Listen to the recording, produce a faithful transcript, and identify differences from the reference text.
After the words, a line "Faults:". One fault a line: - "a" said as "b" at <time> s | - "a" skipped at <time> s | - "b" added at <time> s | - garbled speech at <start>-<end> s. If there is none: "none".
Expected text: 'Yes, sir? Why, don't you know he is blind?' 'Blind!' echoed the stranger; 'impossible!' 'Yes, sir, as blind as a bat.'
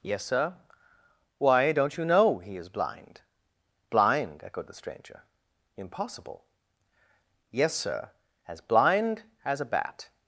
'Yes, sir? Why, don't you know he is blind?' 'Blind!' echoed the stranger; 'impossible!' 'Yes, sir, as blind as a bat.'
Faults:
none